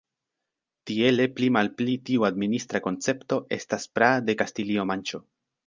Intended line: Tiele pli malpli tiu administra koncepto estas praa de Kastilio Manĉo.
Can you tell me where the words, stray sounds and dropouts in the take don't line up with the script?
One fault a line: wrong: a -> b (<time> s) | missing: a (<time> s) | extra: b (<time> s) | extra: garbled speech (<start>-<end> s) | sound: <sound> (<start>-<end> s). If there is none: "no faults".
no faults